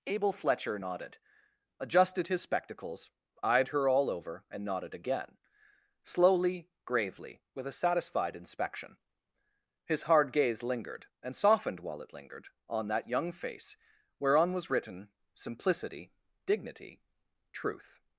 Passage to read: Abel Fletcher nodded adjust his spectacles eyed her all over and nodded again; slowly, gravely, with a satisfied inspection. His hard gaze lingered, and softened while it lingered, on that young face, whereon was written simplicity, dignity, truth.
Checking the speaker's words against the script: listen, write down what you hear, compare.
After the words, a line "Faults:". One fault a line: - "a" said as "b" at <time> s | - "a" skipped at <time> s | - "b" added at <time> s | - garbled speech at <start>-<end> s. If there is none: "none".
Abel Fletcher nodded adjusted his spectacles eyed her all over and nodded again; slowly, gravely, with a satisfied inspection. His hard gaze lingered, and softened while it lingered, on that young face, whereon was written simplicity, dignity, truth.
Faults:
- "adjust" said as "adjusted" at 1.8 s